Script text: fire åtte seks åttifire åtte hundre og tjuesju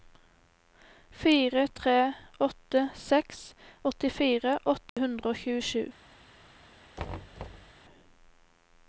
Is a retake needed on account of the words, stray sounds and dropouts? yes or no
yes